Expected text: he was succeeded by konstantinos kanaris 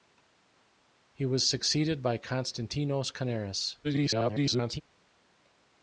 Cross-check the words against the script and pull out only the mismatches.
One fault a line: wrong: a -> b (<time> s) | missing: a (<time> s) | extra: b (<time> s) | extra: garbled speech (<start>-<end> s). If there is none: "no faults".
extra: garbled speech (3.8-4.8 s)